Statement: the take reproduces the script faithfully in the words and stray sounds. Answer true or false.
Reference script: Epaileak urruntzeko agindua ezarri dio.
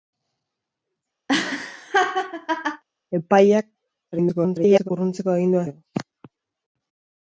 false